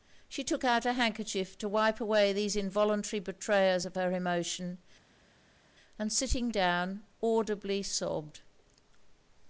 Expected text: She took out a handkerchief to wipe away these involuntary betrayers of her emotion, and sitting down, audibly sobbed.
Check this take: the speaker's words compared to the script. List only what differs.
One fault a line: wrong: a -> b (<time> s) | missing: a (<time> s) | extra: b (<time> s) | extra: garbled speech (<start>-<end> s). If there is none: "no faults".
no faults